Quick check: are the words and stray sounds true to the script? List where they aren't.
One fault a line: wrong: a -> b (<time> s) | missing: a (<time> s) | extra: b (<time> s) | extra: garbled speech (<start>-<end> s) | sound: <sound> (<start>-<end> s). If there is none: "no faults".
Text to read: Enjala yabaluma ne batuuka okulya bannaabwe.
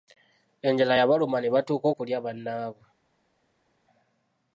no faults